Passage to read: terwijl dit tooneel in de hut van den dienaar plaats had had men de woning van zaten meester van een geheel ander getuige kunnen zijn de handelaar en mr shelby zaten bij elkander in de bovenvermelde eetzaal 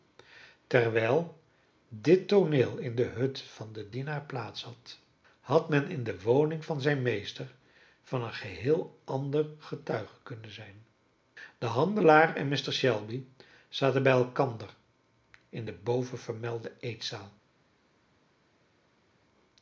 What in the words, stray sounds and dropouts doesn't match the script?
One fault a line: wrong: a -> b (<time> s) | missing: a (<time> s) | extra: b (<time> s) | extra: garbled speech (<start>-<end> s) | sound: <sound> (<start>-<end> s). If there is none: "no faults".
extra: in (5.9 s)
wrong: zaten -> zijn (6.8 s)